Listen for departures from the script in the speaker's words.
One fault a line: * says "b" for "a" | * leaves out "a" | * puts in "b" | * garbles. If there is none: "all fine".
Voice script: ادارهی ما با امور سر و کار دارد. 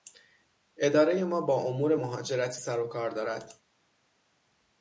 * puts in "مهاجرتی"